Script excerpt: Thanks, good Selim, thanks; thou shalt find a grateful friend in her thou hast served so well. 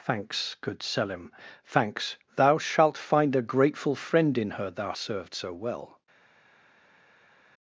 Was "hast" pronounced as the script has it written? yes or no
no